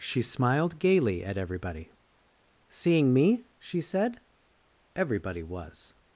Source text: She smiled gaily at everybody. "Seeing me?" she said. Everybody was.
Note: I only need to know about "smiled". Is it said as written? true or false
true